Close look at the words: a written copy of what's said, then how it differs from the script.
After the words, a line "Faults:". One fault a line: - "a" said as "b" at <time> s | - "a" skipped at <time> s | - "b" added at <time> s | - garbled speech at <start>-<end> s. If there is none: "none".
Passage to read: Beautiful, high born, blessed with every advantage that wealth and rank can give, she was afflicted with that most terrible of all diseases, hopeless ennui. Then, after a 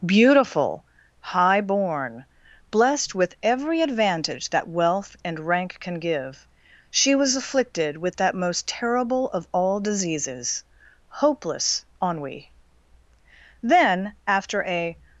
Beautiful, high born, blessed with every advantage that wealth and rank can give, she was afflicted with that most terrible of all diseases, hopeless ennui. Then, after a
Faults:
none